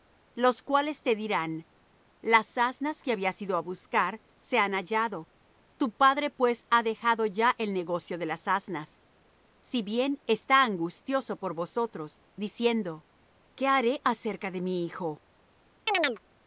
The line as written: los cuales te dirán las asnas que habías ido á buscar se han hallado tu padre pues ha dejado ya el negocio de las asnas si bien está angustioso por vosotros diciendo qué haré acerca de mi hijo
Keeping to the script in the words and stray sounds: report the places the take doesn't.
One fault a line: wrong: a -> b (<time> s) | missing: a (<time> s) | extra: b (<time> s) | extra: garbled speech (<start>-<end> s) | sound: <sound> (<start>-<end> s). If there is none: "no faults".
sound: chirp (15.9-16.2 s)